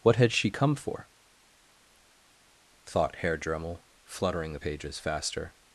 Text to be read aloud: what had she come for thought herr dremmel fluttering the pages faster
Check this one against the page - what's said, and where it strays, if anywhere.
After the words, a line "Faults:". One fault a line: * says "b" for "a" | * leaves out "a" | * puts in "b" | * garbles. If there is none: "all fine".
what had she come for thought herr dremmel fluttering the pages faster
Faults:
all fine